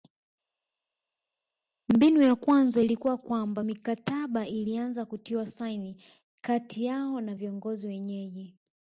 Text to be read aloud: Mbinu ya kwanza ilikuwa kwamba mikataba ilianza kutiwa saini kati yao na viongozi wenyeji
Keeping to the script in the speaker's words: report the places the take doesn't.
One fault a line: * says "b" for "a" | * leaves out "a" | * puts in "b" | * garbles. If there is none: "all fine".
all fine